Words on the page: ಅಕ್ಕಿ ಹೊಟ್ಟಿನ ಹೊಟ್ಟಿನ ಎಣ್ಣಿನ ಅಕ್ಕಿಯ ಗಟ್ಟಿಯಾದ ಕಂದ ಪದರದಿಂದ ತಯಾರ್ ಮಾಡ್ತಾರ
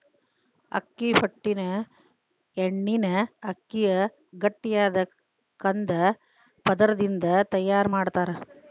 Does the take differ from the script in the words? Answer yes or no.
yes